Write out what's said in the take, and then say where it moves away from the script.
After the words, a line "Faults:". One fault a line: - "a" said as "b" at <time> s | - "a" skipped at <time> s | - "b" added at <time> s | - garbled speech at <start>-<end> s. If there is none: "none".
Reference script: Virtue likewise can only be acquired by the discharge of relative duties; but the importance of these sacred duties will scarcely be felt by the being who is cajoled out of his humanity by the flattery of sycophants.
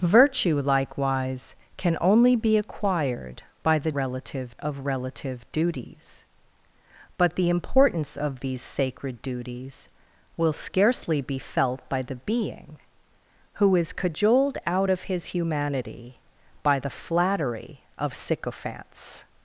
Virtue likewise can only be acquired by the relative of relative duties; but the importance of these sacred duties will scarcely be felt by the being who is cajoled out of his humanity by the flattery of sycophants.
Faults:
- "discharge" said as "relative" at 4.0 s